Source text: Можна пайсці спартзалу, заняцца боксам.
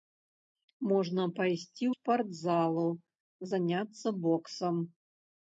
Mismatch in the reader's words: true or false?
false